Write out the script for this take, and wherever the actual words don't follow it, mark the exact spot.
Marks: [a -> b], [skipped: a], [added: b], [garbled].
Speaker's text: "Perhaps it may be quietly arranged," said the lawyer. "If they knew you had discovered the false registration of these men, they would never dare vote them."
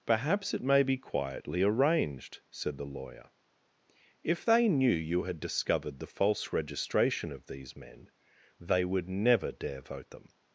"Perhaps it may be quietly arranged," said the lawyer. "If they knew you had discovered the false registration of these men, they would never dare vote them."